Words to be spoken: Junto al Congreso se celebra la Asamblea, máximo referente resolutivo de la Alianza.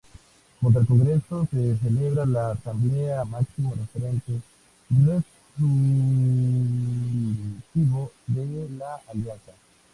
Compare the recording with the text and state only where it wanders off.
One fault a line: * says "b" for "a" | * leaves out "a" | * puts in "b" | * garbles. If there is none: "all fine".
all fine